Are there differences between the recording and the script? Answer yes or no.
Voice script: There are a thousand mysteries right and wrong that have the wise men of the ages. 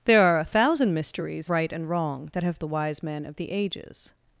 no